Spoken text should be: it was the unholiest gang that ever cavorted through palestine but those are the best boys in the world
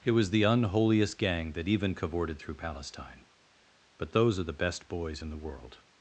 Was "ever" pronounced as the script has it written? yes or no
no